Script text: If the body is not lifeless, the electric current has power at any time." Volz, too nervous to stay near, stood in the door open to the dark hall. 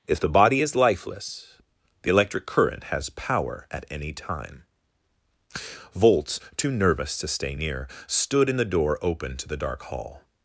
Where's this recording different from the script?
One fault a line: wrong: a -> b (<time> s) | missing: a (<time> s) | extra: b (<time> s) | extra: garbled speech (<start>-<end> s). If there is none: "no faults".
missing: not (0.8 s)